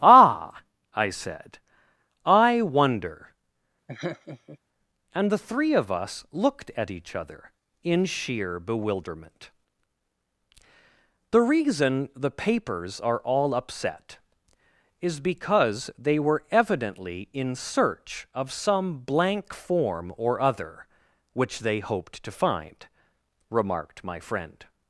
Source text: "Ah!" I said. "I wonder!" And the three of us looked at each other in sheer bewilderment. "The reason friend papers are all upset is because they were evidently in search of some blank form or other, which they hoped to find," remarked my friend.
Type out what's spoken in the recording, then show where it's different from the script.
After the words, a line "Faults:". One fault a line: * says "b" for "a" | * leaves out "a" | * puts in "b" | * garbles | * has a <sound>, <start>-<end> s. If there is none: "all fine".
"Ah!" I said. "I wonder!" And the three of us looked at each other in sheer bewilderment. "The reason the papers are all upset is because they were evidently in search of some blank form or other, which they hoped to find," remarked my friend.
Faults:
* has a laugh, 3.9-4.6 s
* says "the" for "friend"